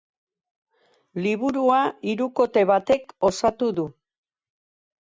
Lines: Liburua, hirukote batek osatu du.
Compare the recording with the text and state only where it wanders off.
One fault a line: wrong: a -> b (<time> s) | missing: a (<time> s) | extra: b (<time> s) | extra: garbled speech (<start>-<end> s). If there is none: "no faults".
no faults